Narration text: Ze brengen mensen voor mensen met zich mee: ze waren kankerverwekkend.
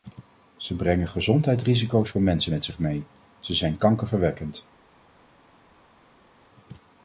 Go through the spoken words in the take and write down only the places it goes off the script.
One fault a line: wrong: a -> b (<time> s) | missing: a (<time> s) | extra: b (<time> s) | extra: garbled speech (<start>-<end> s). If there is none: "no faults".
wrong: mensen -> gezondheidsrisico's (1.1 s)
wrong: waren -> zijn (3.5 s)